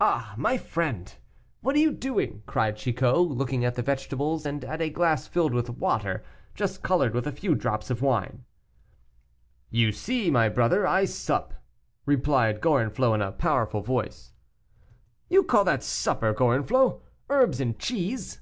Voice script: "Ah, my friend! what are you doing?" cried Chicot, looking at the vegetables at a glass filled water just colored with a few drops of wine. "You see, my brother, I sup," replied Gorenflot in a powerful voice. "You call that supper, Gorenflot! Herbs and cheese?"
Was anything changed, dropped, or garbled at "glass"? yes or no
no